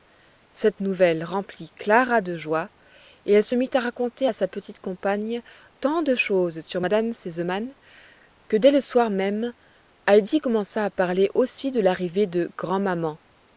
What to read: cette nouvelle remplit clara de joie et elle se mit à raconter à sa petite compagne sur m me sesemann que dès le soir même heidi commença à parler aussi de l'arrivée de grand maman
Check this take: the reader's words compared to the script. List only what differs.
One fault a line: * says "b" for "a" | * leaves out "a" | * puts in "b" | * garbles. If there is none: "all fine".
* puts in "tant de choses"